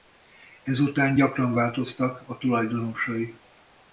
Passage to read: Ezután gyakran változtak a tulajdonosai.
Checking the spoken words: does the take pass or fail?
pass